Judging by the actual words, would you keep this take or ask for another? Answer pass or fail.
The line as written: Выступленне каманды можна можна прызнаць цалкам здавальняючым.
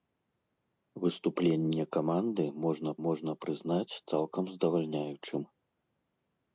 pass